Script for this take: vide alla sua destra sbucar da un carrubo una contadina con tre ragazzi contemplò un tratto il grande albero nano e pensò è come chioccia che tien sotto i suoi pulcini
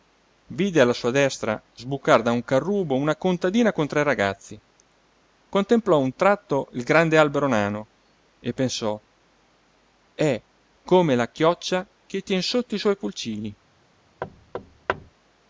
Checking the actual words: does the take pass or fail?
fail